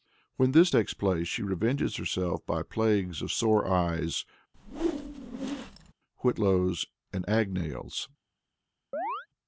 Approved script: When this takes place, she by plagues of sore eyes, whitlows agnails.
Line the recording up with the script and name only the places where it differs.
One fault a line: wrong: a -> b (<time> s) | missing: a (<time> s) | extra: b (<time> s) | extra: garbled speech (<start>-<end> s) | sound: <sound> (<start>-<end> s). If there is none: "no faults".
extra: revenges herself (1.4 s)
sound: whoosh (4.5-5.9 s)
extra: and (7.1 s)
sound: chirp (8.9-9.3 s)